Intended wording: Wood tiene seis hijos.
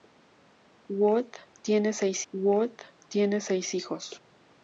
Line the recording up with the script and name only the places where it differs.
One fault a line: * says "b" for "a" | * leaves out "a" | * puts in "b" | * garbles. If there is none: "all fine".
* puts in "wood tiene seis"